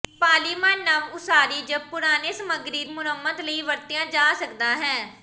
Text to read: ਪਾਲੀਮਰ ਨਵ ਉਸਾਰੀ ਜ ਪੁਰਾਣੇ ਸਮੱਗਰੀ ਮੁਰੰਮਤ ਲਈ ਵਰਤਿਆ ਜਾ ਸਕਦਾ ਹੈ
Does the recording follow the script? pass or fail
pass